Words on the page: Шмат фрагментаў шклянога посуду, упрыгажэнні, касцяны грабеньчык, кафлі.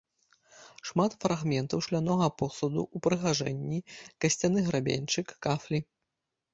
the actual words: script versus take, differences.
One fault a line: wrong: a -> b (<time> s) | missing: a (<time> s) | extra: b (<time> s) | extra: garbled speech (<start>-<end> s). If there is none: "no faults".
no faults